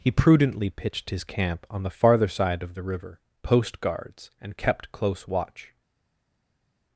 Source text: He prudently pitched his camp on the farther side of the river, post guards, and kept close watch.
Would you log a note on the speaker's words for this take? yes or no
no